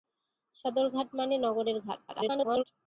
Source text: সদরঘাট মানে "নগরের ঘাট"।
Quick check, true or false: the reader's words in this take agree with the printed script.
false